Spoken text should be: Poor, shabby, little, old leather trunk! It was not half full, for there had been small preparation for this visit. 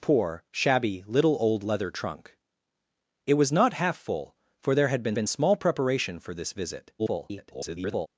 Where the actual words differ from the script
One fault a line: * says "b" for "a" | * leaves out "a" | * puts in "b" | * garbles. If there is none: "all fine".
* puts in "been"
* garbles